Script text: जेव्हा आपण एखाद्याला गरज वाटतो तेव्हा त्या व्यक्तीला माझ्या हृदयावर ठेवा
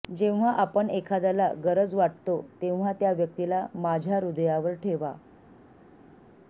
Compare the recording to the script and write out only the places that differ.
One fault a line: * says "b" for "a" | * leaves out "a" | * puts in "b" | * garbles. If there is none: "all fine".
all fine